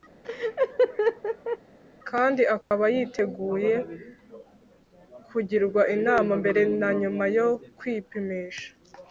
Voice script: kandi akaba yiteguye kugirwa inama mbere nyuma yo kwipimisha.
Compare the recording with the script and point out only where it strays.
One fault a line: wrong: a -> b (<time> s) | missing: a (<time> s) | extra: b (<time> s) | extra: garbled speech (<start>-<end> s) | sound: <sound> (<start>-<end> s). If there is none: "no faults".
sound: laugh (0.2-1.6 s)
sound: dropout (2.6-2.7 s)
extra: na (6.8 s)